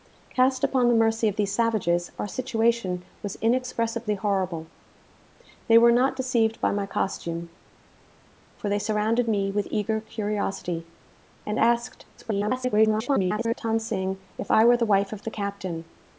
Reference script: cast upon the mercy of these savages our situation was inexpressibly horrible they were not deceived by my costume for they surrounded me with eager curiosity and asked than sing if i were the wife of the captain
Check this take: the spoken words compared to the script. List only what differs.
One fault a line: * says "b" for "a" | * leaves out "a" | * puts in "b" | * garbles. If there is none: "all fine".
* garbles